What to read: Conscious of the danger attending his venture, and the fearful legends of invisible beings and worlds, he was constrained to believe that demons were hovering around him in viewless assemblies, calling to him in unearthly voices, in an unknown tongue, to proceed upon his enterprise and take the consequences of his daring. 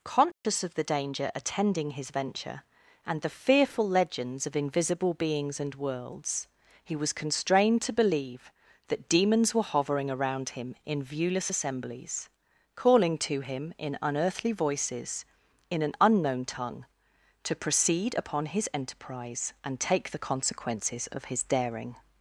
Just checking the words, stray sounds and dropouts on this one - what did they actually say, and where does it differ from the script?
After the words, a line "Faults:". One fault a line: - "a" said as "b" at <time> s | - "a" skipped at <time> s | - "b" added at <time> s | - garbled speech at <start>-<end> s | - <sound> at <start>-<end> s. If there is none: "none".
Conscious of the danger attending his venture, and the fearful legends of invisible beings and worlds, he was constrained to believe that demons were hovering around him in viewless assemblies, calling to him in unearthly voices, in an unknown tongue, to proceed upon his enterprise and take the consequences of his daring.
Faults:
- dropout at 0.3-0.4 s